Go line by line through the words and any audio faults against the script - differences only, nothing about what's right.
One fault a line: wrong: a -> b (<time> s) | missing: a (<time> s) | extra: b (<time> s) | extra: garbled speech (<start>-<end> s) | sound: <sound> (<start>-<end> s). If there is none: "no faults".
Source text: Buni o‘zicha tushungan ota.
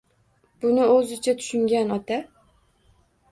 no faults